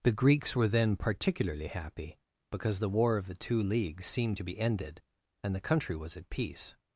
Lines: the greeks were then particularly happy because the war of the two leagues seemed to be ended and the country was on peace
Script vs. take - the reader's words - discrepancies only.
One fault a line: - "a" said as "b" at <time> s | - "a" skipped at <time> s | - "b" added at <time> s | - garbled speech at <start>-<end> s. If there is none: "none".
- "on" said as "at" at 6.1 s